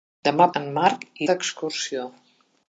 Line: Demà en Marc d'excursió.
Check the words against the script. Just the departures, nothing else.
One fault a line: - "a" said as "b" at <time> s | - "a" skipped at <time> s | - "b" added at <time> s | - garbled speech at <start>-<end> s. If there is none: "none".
none